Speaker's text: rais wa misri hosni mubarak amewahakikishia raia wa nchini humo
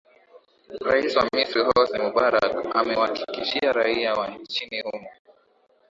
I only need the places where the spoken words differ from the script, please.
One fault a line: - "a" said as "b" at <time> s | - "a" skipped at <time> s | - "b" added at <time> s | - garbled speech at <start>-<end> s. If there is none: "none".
none